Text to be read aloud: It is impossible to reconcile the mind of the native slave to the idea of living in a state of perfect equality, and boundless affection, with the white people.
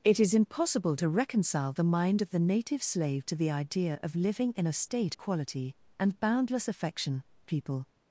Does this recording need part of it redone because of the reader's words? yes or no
yes